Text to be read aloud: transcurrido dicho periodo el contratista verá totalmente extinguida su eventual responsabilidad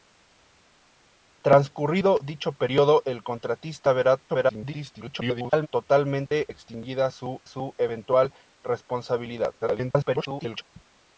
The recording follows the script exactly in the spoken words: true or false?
false